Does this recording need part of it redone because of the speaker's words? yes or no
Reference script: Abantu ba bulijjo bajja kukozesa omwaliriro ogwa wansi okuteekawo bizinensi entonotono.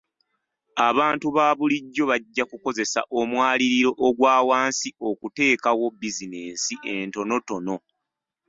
no